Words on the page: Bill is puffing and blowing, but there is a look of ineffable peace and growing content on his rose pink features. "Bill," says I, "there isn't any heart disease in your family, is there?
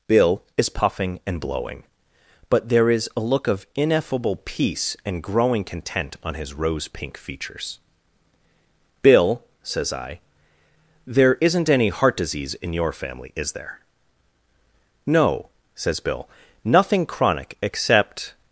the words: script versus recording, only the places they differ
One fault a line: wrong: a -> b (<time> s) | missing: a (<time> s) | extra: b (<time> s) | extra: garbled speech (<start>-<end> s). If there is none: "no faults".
extra: No says Bill nothing chronic except (15.0 s)